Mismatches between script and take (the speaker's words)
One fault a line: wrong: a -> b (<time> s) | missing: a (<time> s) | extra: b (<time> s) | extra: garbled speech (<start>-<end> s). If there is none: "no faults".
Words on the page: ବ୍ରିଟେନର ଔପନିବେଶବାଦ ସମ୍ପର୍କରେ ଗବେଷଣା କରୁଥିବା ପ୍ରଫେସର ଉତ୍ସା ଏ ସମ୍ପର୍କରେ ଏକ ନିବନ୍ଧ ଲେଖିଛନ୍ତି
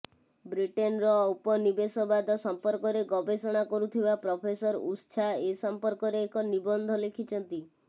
no faults